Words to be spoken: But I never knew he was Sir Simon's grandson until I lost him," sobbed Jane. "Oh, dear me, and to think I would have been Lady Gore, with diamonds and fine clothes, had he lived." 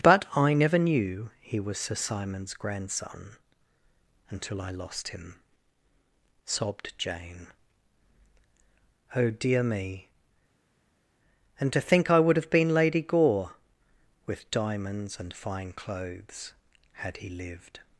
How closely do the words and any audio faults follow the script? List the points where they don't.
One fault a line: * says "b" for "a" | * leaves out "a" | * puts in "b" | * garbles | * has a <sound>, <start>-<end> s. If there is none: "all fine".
all fine